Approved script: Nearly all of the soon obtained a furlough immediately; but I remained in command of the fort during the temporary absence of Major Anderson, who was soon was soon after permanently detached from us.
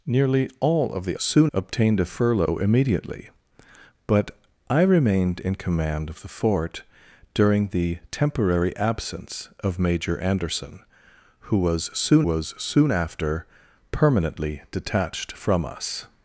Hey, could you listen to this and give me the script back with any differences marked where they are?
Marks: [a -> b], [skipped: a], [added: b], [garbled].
Nearly all of the soon obtained a furlough immediately; but I remained in command of the fort during the temporary absence of Major Anderson, who was soon was soon after permanently detached from us.